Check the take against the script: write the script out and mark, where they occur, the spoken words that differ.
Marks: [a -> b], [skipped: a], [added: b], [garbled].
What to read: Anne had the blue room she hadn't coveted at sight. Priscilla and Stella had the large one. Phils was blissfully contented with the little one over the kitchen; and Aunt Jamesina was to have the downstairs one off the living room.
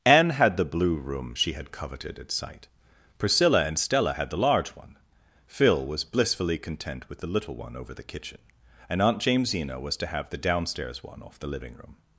Anne had the blue room she [hadn't -> had] coveted at sight. Priscilla and Stella had the large one. [Phils -> Phil] was blissfully [contented -> content] with the little one over the kitchen; and Aunt Jamesina was to have the downstairs one off the living room.